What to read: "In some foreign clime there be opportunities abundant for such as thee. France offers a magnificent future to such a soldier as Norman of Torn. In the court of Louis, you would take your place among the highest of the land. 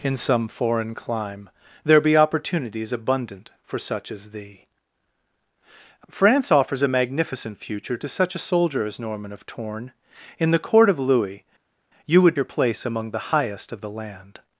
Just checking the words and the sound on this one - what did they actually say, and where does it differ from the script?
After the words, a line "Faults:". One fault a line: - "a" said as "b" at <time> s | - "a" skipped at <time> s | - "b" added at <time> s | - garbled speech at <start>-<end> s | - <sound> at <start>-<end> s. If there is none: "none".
"In some foreign clime there be opportunities abundant for such as thee. France offers a magnificent future to such a soldier as Norman of Torn. In the court of Louis, you would your place among the highest of the land.
Faults:
- "take" skipped at 12.4 s